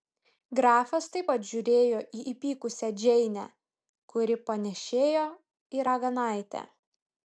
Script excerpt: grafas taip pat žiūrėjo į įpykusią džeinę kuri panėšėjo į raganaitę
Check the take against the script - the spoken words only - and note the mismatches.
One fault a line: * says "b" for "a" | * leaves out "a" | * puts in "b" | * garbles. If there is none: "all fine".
all fine